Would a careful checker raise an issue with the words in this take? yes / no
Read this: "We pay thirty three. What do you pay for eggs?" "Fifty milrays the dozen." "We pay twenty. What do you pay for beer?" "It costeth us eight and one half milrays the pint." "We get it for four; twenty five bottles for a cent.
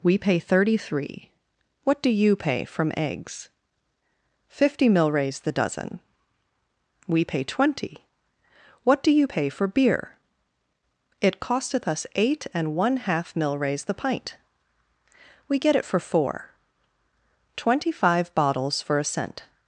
yes